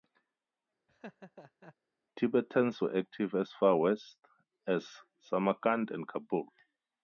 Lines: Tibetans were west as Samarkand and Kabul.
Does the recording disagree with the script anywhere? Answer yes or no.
yes